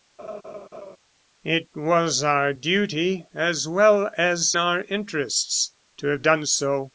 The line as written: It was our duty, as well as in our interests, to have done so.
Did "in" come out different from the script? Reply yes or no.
yes